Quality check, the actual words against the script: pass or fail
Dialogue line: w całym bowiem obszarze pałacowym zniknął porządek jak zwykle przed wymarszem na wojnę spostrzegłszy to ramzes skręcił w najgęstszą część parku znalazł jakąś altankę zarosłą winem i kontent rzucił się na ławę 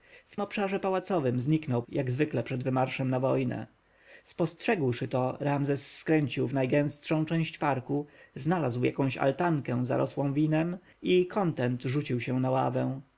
fail